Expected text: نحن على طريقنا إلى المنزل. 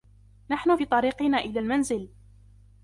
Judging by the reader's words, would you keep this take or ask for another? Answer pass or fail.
fail